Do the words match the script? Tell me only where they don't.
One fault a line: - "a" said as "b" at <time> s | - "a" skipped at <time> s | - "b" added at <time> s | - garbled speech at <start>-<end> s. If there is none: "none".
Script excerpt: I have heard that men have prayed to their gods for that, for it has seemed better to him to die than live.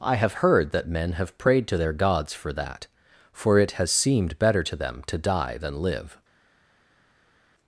- "him" said as "them" at 4.8 s